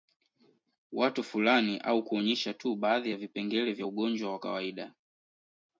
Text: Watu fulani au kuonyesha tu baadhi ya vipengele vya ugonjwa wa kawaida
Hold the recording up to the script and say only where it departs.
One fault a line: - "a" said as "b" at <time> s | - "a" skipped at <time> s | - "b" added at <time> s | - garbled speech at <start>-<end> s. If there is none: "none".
none